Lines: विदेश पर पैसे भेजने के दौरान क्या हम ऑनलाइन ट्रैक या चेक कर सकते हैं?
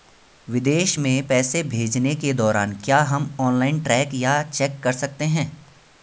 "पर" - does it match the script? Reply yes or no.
no